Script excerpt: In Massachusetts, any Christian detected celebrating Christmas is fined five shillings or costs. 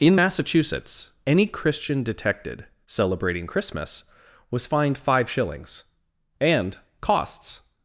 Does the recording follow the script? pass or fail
fail